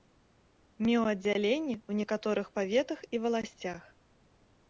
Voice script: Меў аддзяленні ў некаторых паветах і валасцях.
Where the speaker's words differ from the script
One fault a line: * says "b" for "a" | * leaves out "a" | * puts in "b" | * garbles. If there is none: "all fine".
all fine